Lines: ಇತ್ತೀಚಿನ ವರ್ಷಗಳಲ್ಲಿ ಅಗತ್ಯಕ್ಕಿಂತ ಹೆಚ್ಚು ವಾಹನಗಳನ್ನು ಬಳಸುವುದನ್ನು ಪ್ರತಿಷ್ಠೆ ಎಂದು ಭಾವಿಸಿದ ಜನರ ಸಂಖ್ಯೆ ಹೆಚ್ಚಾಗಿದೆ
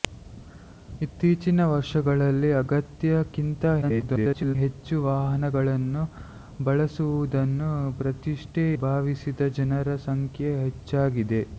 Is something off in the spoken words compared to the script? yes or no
yes